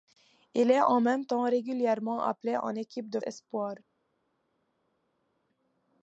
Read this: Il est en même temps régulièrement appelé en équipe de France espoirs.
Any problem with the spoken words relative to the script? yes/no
yes